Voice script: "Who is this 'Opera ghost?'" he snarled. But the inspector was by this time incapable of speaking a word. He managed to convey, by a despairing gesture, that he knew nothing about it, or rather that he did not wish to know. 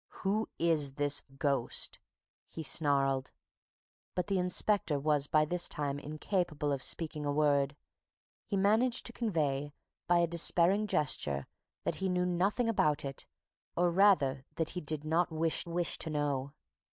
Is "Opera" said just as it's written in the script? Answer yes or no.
no